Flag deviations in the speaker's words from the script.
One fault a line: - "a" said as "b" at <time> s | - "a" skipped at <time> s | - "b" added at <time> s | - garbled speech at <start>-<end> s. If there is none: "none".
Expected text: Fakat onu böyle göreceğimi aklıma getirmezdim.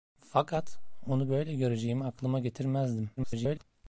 - garbled speech at 3.2-3.6 s